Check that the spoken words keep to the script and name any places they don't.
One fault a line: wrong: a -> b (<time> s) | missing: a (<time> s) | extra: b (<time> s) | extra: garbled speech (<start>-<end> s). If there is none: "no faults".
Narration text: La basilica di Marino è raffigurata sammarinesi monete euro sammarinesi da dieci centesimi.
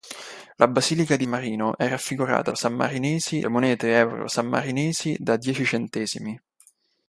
no faults